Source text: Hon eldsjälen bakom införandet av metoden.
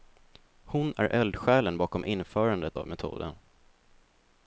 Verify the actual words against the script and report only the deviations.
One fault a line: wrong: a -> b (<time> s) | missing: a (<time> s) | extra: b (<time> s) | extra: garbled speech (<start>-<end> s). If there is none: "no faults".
extra: är (1.0 s)